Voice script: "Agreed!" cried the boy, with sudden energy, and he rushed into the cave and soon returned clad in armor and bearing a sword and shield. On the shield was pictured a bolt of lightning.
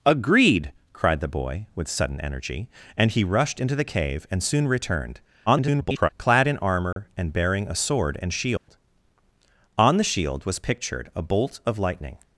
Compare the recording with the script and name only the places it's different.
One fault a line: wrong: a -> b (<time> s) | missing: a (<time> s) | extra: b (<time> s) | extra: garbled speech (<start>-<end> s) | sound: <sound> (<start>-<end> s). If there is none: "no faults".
extra: garbled speech (5.5-6.1 s)
sound: dropout (6.9-7.0 s)
sound: dropout (8.6-8.7 s)